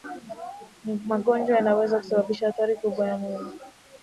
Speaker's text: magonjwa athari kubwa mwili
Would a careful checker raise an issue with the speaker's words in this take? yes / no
yes